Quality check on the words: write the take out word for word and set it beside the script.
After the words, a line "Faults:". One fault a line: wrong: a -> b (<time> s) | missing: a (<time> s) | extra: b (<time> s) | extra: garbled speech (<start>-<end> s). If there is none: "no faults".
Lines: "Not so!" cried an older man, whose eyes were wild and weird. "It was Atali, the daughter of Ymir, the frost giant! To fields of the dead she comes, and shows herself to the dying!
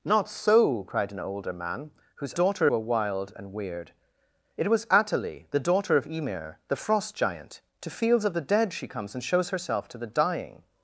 "Not so!" cried an older man, whose daughter were wild and weird. "It was Atali, the daughter of Ymir, the frost giant! To fields of the dead she comes, and shows herself to the dying!
Faults:
wrong: eyes -> daughter (2.3 s)